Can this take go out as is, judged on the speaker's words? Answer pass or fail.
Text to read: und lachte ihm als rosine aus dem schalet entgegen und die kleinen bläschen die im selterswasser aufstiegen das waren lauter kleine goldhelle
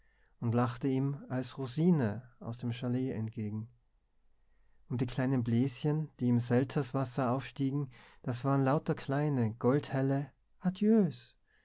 pass